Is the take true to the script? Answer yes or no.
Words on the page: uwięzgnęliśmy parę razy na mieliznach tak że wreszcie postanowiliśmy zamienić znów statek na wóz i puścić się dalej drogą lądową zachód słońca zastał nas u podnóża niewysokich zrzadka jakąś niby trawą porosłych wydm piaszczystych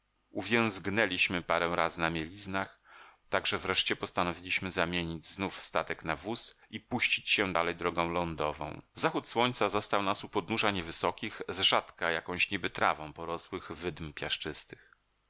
yes